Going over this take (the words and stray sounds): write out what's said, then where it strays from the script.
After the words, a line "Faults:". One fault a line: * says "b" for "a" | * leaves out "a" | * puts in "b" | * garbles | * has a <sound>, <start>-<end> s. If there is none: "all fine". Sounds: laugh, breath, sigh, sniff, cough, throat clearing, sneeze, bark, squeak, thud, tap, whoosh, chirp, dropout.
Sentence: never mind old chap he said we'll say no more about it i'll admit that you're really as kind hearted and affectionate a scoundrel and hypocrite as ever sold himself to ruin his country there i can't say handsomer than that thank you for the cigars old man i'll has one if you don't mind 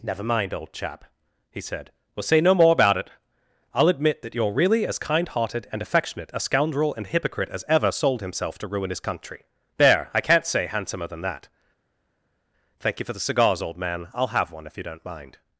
never mind old chap he said we'll say no more about it i'll admit that you're really as kind hearted and affectionate a scoundrel and hypocrite as ever sold himself to ruin his country there i can't say handsomer than that thank you for the cigars old man i'll have one if you don't mind
Faults:
* says "have" for "has"